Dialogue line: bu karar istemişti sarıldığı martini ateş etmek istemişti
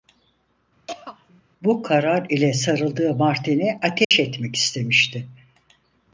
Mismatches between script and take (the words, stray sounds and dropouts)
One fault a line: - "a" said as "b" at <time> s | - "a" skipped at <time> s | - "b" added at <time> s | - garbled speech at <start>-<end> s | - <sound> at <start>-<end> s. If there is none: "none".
- throat clearing at 0.9-1.4 s
- "istemişti" said as "ile" at 2.3 s
- dropout at 4.0-4.1 s